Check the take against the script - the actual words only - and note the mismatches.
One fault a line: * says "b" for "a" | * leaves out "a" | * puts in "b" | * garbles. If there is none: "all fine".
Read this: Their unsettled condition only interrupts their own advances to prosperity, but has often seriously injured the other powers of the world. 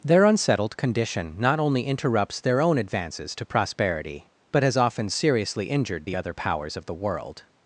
* puts in "not"